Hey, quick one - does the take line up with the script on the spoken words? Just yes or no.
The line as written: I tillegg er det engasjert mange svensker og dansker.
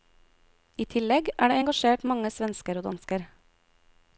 yes